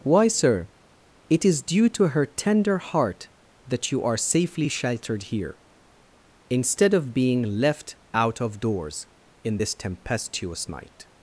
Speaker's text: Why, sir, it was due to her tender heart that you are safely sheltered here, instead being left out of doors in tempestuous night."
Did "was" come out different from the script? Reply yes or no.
yes